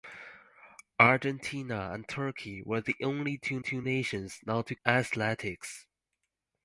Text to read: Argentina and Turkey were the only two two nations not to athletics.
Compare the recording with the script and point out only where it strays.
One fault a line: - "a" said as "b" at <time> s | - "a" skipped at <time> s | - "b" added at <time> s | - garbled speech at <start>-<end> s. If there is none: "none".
none